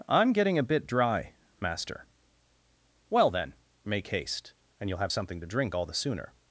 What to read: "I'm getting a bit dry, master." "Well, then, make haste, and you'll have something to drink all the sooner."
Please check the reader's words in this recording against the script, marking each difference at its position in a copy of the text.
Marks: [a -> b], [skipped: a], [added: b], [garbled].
"I'm getting a bit dry, master." "Well, then, make haste, and you'll have something to drink all the sooner."